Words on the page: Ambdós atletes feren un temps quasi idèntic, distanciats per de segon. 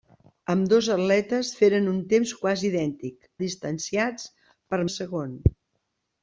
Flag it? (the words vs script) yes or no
no